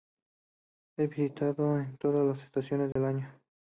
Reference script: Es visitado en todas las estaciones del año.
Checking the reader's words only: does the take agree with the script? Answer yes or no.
yes